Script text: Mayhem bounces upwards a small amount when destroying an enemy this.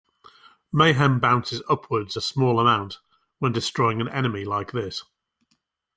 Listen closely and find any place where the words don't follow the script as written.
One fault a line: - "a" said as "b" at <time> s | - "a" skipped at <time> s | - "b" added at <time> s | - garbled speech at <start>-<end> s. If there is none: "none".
- "like" added at 4.4 s